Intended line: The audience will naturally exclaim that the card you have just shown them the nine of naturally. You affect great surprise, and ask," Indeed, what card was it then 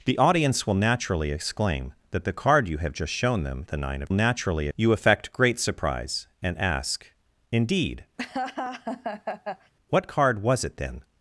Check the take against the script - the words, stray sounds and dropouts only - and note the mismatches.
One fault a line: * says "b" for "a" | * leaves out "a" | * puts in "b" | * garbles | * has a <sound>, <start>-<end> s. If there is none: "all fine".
* has a laugh, 8.2-9.7 s